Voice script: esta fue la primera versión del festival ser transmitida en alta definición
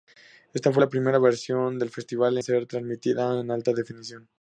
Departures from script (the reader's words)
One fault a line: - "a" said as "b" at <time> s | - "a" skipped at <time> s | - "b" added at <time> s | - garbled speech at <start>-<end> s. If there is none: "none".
none